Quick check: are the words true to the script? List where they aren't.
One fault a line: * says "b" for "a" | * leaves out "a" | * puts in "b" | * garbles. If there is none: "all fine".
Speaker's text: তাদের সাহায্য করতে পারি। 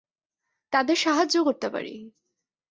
all fine